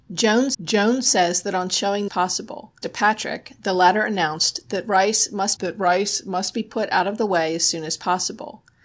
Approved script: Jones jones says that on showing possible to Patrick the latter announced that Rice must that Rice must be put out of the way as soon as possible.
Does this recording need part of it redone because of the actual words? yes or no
no